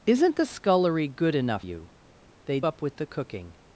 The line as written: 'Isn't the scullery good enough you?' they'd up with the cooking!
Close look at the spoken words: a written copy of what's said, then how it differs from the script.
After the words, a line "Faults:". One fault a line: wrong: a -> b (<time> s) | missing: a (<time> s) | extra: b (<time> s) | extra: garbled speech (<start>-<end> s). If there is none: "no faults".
'Isn't the scullery good enough you?' they'd up with the cooking!
Faults:
no faults